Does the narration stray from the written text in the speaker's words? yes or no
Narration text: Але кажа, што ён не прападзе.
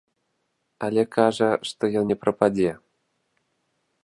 no